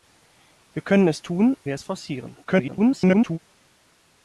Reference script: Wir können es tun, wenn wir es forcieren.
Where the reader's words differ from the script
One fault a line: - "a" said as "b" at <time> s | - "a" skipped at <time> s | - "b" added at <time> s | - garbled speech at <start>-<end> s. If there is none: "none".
- "wenn" skipped at 1.6 s
- garbled speech at 2.4-3.4 s